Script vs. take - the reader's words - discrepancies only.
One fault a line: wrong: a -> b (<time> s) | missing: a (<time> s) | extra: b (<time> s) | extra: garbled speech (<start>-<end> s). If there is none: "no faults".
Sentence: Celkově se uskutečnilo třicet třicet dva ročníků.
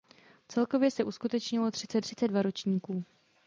no faults